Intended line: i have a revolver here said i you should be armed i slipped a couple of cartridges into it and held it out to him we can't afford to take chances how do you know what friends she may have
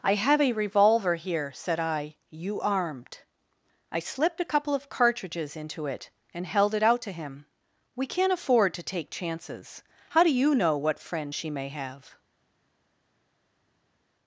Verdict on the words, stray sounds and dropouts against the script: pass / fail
fail